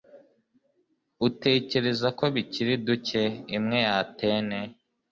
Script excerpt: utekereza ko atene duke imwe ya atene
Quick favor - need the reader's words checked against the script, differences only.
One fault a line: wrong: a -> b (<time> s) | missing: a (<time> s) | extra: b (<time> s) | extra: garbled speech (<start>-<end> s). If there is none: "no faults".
wrong: atene -> bikiri (2.3 s)